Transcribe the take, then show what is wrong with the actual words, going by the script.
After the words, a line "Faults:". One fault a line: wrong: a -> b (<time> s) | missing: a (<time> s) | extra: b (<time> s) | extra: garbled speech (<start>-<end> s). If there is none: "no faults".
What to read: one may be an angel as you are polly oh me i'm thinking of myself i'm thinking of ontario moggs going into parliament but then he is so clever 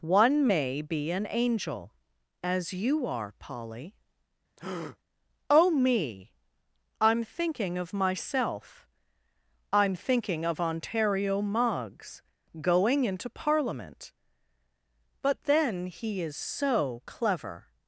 one may be an angel as you are polly oh me i'm thinking of myself i'm thinking of ontario moggs going into parliament but then he is so clever
Faults:
no faults